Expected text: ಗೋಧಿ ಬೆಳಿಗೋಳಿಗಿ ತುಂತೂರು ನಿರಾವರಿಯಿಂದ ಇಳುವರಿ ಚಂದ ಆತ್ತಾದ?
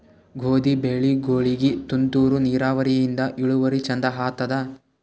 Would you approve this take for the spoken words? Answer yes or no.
yes